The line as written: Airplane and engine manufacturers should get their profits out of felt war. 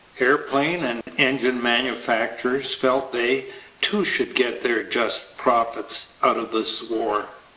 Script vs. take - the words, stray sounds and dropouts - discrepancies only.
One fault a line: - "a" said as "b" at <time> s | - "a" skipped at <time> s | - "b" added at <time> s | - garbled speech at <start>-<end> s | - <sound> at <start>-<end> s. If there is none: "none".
- dropout at 1.0-1.1 s
- "felt they too" added at 2.7 s
- "just" added at 4.8 s
- "felt" said as "this" at 6.5 s